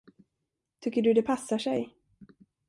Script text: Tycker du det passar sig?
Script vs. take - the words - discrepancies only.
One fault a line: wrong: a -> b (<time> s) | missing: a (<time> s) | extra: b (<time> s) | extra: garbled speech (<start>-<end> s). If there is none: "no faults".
no faults